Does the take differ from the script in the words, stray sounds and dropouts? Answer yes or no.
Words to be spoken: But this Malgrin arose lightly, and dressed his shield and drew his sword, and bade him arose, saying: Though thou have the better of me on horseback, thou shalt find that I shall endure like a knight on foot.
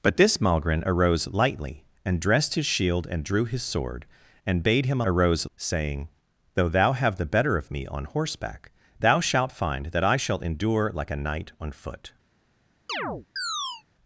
yes